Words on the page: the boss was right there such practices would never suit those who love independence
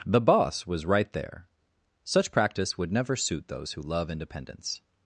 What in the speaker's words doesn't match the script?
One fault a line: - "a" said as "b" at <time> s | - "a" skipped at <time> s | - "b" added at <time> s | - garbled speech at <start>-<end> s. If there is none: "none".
- "practices" said as "practice" at 2.3 s